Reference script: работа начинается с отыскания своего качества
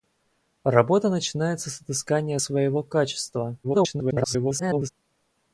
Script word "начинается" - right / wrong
right